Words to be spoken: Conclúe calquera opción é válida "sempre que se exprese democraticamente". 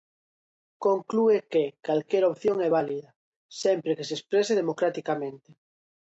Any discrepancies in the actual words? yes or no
yes